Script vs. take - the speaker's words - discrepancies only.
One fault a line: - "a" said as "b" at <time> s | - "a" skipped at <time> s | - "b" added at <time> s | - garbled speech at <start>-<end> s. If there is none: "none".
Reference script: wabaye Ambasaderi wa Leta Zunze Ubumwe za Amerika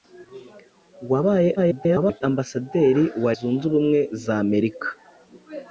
- garbled speech at 1.6-2.2 s
- "Leta" skipped at 3.3 s